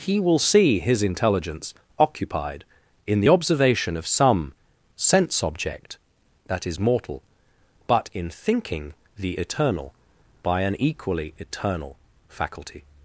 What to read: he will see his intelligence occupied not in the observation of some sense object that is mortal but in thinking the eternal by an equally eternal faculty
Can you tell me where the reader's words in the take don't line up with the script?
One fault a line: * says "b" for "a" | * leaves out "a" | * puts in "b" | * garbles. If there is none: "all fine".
* leaves out "not"